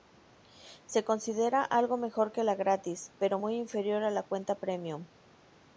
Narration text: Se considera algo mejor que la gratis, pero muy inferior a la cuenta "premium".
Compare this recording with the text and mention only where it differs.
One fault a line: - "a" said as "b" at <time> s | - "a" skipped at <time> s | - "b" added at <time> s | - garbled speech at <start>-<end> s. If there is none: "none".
none